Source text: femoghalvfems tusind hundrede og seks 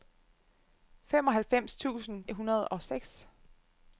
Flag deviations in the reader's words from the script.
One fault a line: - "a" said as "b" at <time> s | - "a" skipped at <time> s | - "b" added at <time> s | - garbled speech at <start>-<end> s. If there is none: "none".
none